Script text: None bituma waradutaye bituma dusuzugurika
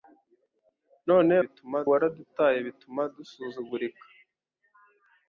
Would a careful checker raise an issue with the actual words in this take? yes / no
no